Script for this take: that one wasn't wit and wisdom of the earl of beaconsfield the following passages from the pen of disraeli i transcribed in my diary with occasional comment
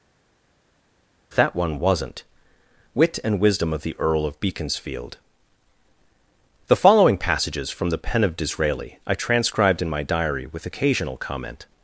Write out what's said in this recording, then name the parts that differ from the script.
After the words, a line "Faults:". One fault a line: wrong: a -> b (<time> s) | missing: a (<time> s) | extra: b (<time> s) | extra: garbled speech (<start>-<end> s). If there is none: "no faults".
that one wasn't wit and wisdom of the earl of beaconsfield the following passages from the pen of disraeli i transcribed in my diary with occasional comment
Faults:
no faults